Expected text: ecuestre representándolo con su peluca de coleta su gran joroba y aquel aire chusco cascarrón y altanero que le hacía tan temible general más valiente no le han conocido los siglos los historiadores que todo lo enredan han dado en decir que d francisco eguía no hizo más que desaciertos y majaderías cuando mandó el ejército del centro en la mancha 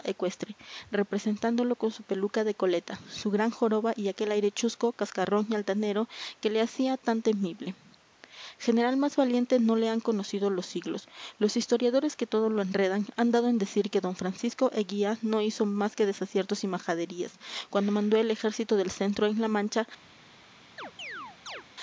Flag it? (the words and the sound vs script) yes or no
yes